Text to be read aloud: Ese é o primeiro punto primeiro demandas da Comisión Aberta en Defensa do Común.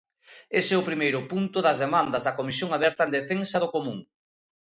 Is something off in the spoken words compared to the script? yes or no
yes